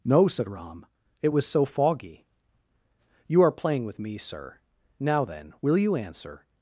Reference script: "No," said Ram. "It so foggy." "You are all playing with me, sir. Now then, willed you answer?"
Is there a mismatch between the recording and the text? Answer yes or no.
yes